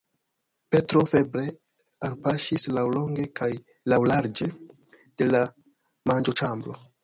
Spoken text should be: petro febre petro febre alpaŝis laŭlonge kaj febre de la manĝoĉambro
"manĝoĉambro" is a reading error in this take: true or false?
false